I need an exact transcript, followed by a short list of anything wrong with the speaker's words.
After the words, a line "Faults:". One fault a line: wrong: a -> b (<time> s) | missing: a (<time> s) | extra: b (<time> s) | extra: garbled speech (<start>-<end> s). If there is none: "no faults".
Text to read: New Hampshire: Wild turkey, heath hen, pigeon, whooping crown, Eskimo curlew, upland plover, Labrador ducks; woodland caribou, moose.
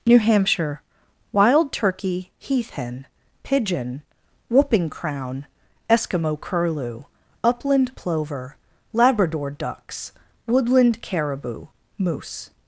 New Hampshire: Wild turkey, heath hen, pigeon, whooping crown, Eskimo curlew, upland plover, Labrador ducks; woodland caribou, moose.
Faults:
no faults